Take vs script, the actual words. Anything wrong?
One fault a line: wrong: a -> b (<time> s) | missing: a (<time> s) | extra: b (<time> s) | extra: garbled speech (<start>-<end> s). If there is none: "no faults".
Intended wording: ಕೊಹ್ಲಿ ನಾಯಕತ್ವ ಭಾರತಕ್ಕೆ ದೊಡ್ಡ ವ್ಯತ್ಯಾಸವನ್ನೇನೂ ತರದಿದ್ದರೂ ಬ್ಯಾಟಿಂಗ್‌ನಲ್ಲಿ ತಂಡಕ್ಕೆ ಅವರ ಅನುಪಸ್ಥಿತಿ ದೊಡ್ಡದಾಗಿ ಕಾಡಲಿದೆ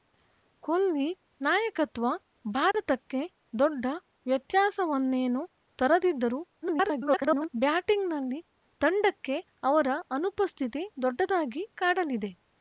extra: garbled speech (6.6-7.5 s)